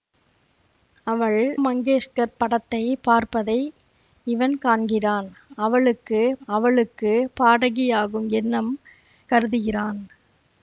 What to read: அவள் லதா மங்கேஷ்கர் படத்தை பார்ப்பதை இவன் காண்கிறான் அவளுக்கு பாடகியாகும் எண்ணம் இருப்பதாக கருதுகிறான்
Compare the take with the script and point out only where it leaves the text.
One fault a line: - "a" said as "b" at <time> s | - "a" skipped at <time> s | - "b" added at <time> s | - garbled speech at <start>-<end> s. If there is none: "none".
- "லதா" skipped at 1.4 s
- "அவளுக்கு" added at 6.5 s
- "இருப்பதாக" skipped at 8.7 s